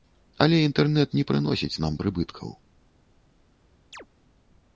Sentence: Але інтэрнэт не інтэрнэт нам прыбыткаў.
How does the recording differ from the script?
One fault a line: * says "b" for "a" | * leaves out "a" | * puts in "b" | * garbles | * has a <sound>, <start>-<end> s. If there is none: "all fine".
* says "прыносіць" for "інтэрнэт"
* has a chirp, 3.9-4.1 s